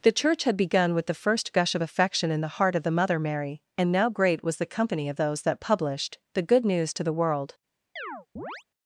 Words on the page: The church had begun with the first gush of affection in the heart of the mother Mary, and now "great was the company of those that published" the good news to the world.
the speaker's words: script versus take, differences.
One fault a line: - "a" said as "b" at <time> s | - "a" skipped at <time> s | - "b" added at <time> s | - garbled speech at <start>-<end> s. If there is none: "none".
none